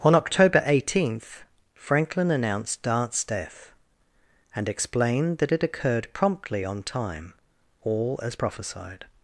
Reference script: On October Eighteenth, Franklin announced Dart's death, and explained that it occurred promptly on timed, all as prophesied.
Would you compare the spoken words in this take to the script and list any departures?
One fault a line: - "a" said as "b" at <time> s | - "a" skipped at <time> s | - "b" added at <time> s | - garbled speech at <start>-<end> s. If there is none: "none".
- "timed" said as "time" at 6.8 s